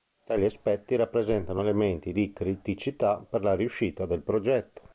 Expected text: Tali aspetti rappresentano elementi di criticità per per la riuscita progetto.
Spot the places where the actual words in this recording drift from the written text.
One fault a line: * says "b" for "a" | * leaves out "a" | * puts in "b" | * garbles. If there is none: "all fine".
* leaves out "per"
* puts in "del"